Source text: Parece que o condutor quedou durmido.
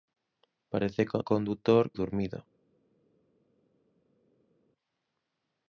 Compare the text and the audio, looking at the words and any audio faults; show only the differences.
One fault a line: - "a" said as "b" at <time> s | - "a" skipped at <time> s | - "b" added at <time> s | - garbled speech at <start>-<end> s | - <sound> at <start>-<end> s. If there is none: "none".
- "quedou" skipped at 1.8 s